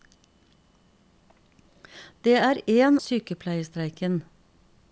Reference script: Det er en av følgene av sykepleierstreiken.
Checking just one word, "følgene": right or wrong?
wrong